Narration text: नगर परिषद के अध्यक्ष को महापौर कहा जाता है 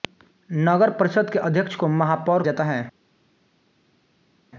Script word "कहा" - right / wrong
wrong